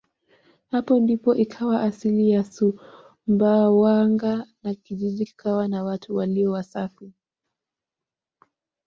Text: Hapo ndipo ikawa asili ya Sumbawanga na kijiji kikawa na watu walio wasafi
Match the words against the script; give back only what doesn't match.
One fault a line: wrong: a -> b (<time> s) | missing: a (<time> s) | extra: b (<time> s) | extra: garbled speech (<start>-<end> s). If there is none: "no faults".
no faults